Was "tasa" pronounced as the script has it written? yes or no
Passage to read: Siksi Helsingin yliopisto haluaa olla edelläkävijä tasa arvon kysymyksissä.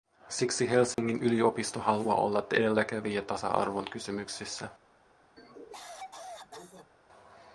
yes